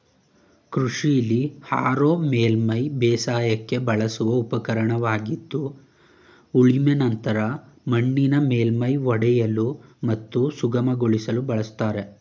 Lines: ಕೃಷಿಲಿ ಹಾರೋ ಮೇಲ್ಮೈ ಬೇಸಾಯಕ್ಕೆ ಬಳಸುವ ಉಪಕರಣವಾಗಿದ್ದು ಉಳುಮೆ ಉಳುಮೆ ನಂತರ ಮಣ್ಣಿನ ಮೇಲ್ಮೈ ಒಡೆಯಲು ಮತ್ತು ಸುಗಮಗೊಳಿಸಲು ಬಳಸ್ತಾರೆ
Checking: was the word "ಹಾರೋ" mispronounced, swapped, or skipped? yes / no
no